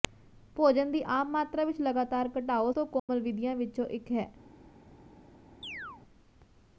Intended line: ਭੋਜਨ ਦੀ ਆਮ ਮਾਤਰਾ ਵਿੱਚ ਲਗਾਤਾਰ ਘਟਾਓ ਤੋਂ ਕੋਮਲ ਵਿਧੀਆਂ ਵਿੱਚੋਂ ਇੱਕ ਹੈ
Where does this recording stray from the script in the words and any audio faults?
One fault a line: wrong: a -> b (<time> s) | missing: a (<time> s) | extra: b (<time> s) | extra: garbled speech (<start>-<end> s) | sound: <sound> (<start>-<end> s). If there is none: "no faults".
sound: dropout (3.0-3.1 s)
sound: chirp (5.6-6.0 s)